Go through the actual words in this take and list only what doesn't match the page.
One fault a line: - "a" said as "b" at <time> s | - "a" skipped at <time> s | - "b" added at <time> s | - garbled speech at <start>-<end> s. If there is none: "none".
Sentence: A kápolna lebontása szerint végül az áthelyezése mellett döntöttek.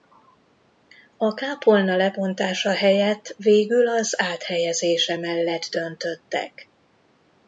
- "szerint" said as "helyett" at 2.7 s